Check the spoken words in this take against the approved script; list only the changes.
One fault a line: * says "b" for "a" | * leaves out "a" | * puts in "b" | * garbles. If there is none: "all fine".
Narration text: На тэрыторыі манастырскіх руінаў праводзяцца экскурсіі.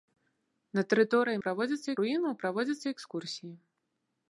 * says "праводзяцца" for "манастырскіх"